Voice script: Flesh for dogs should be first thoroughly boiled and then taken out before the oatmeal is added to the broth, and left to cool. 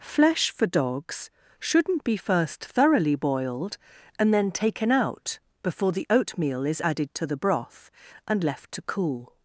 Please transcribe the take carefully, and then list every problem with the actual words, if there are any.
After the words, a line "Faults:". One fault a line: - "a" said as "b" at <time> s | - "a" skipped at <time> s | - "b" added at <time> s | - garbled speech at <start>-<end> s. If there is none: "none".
Flesh for dogs shouldn't be first thoroughly boiled and then taken out before the oatmeal is added to the broth, and left to cool.
Faults:
- "should" said as "shouldn't" at 1.6 s